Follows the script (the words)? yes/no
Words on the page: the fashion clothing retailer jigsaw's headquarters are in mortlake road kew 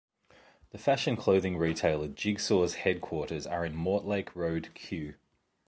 yes